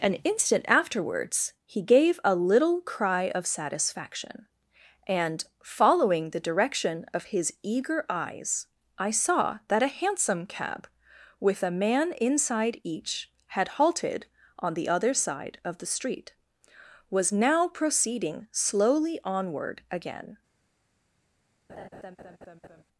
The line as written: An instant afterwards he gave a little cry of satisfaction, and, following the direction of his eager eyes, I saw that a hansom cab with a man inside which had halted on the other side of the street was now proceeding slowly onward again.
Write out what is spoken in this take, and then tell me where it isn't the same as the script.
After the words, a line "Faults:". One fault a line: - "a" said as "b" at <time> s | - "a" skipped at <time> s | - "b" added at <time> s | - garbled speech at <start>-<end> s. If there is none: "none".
An instant afterwards he gave a little cry of satisfaction, and, following the direction of his eager eyes, I saw that a hansom cab with a man inside each had halted on the other side of the street was now proceeding slowly onward again.
Faults:
- "which" said as "each" at 12.8 s